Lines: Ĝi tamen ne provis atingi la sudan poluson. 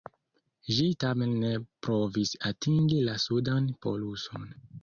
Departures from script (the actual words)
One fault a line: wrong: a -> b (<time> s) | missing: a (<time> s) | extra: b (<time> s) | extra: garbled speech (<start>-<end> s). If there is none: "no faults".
no faults